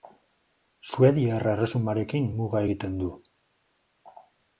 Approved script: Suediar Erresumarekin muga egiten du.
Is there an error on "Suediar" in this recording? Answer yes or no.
no